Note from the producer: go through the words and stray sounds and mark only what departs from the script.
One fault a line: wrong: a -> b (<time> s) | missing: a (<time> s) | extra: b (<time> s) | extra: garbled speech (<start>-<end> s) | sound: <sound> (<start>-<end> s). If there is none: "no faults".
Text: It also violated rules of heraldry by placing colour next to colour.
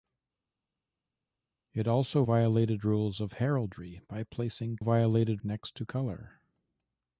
wrong: colour -> violated (4.8 s)